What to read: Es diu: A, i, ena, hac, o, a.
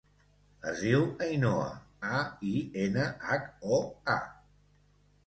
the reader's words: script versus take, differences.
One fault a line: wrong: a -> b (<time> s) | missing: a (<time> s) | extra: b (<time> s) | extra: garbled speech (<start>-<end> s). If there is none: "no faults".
extra: Ainhoa (1.2 s)